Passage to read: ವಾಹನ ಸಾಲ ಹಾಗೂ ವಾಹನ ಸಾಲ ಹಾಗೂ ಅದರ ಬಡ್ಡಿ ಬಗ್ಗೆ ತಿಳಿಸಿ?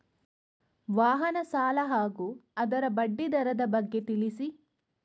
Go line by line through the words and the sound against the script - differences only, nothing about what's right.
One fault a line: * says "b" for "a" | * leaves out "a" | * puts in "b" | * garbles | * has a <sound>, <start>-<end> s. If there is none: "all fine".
* leaves out "ವಾಹನ ಸಾಲ ಹಾಗೂ"
* puts in "ದರದ"